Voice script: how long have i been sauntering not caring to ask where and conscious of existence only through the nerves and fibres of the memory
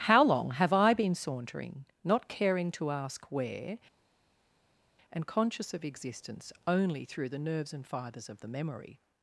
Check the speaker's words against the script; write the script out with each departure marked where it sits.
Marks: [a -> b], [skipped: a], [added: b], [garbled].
how long have i been sauntering not caring to ask where and conscious of existence only through the nerves and fibres of the memory